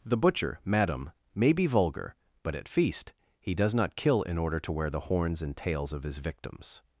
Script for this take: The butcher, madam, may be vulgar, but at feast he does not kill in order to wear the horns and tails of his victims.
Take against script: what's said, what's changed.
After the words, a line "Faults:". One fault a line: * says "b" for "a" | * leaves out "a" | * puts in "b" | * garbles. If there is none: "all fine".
The butcher, madam, may be vulgar, but at feast he does not kill in order to wear the horns and tails of his victims.
Faults:
all fine